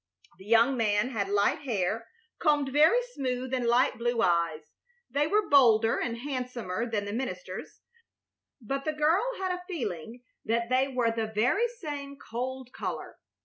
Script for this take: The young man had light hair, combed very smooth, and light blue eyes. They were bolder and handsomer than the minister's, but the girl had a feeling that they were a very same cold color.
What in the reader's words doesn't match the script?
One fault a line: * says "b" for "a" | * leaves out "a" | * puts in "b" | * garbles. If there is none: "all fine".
* says "the" for "a"